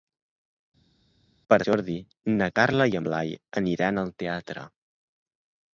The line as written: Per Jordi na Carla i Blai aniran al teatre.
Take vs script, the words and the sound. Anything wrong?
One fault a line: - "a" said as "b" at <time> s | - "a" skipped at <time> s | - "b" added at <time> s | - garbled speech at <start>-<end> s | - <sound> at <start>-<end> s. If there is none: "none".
none